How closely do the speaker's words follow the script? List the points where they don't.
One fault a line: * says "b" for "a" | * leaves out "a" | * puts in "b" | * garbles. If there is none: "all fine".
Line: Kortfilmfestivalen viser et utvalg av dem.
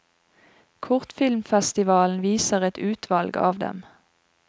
all fine